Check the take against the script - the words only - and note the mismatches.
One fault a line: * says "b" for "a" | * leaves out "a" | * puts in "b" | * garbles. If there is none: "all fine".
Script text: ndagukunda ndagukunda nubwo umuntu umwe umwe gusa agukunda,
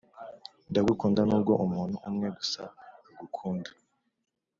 * leaves out "ndagukunda"
* leaves out "umwe"